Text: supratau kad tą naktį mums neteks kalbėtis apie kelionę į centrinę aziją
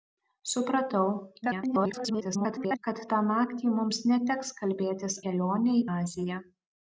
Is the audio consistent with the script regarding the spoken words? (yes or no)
no